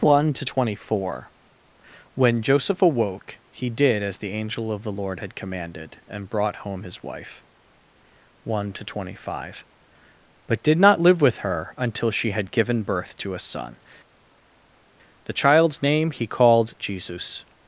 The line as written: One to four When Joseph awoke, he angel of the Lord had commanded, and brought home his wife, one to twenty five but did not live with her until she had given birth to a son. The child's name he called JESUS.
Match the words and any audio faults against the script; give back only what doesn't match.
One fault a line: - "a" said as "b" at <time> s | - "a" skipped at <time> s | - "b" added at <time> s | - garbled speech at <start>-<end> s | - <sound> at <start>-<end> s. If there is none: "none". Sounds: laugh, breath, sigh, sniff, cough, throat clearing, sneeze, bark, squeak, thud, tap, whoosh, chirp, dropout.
- "twenty" added at 0.4 s
- "did as the" added at 3.7 s